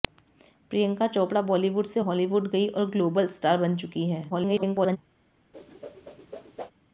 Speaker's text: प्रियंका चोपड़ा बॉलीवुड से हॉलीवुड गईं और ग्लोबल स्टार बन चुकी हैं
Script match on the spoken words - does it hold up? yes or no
no